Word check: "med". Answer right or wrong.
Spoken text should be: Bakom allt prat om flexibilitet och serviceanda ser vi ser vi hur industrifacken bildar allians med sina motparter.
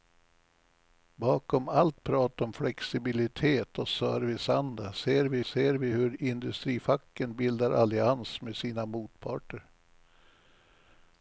right